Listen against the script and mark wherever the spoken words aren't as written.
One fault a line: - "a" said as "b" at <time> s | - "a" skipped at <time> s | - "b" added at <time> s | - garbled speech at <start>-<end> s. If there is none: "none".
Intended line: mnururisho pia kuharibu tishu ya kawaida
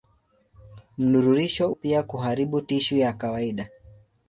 none